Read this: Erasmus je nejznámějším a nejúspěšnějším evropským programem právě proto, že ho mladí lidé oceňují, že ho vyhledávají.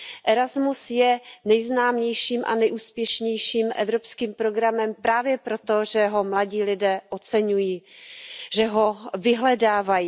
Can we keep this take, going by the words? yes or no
yes